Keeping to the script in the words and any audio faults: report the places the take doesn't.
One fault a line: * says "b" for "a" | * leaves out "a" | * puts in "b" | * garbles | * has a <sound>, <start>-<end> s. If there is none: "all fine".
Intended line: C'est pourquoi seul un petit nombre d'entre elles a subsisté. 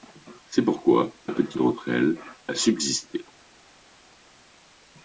* leaves out "seul"
* leaves out "nombre"